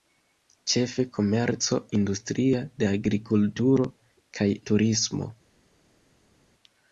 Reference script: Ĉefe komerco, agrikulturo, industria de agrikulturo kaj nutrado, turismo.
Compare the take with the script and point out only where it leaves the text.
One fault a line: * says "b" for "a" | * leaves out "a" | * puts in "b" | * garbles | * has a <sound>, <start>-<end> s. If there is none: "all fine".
* leaves out "agrikulturo"
* leaves out "nutrado"